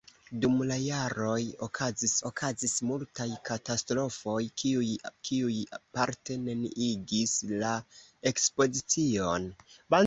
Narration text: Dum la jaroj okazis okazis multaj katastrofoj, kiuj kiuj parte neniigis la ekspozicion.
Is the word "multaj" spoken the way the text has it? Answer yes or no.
yes